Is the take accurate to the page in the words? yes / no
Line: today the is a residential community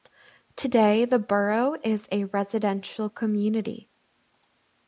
no